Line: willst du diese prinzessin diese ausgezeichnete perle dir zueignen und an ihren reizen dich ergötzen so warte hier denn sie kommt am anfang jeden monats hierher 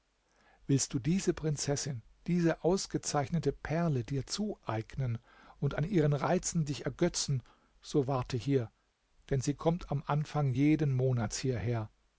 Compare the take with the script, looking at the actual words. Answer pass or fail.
pass